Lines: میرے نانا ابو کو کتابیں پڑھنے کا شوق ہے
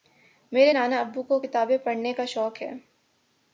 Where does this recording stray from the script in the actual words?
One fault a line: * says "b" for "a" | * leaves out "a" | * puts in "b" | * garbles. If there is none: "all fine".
all fine